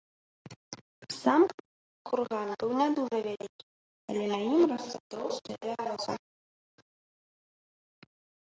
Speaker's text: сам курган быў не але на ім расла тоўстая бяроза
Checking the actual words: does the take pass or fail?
fail